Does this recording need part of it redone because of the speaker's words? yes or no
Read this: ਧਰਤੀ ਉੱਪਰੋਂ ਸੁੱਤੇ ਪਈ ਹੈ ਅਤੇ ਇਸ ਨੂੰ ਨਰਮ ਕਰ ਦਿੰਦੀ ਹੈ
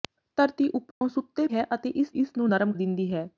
yes